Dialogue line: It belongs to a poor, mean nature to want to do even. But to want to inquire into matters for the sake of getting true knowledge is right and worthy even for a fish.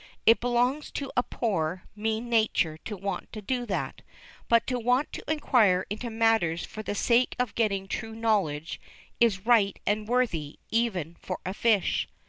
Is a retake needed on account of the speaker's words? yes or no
yes